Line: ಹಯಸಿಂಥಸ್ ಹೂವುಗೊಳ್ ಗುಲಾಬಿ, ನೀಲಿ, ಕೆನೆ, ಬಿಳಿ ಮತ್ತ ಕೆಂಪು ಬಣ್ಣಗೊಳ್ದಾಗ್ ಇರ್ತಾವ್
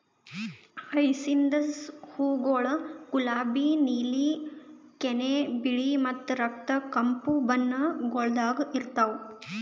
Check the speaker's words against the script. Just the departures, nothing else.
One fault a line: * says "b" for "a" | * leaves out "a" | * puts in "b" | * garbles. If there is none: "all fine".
* puts in "ರಕ್ತ"